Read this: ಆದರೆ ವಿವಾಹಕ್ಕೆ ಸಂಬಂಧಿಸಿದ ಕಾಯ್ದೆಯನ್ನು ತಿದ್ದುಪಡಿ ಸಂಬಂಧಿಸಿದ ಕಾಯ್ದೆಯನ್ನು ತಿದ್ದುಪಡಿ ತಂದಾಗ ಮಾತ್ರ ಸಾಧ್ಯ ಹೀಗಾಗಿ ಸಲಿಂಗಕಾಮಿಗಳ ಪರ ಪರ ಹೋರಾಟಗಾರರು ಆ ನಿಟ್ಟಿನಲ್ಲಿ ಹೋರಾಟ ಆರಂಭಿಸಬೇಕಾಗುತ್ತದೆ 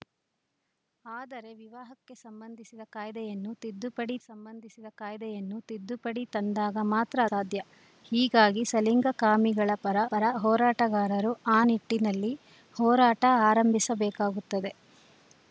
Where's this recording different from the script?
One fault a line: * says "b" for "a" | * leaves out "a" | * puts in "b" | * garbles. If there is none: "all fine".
all fine